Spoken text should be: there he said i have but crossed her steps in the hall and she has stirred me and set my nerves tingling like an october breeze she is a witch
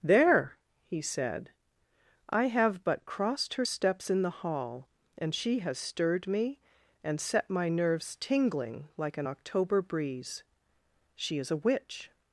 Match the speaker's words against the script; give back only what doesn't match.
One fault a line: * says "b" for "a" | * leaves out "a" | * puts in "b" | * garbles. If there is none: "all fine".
all fine